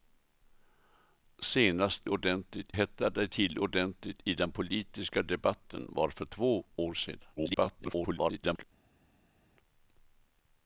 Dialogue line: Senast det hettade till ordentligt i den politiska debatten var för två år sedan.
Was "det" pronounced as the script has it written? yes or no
no